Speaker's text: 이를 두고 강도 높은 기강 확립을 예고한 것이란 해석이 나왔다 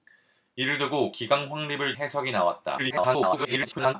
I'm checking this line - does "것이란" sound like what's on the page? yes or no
no